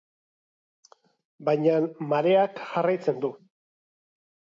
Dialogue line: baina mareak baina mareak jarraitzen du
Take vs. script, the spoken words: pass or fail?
fail